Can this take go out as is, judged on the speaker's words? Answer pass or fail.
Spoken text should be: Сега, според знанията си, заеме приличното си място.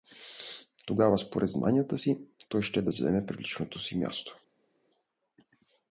fail